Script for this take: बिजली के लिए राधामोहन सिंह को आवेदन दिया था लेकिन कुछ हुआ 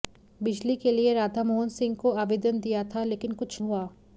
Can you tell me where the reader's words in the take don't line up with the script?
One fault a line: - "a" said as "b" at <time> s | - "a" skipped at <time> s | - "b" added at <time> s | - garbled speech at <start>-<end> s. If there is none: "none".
none